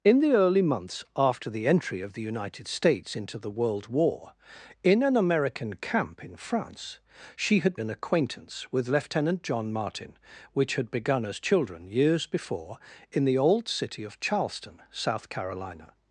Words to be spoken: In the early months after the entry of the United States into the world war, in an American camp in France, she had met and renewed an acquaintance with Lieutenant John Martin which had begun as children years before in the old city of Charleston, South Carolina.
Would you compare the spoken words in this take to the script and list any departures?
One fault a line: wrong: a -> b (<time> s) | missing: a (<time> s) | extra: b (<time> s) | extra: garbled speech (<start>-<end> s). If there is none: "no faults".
missing: met and renewed (7.8 s)